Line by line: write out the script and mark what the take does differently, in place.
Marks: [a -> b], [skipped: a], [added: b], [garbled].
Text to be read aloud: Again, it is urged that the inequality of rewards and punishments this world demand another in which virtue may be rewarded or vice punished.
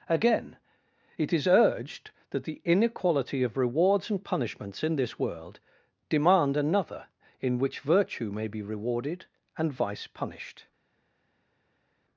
Again, it is urged that the inequality of rewards and punishments [added: in] this world demand another in which virtue may be rewarded [or -> and] vice punished.